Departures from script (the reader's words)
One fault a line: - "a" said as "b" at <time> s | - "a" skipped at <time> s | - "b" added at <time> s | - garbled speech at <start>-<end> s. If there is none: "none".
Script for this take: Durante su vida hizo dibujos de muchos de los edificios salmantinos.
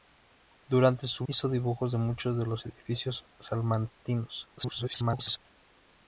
- "vida" skipped at 1.3 s
- garbled speech at 4.6-5.4 s